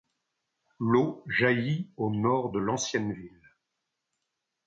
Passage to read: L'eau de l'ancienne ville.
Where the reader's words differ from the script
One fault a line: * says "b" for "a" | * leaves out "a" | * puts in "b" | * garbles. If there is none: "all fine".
* puts in "jaillit au nord"